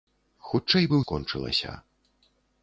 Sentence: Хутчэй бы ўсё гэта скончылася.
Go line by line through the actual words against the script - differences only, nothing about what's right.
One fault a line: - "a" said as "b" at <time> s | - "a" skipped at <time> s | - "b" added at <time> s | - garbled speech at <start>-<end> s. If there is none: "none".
- "ўсё гэта" skipped at 1.0 s